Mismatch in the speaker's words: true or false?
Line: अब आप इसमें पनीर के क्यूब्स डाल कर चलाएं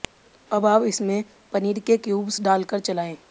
false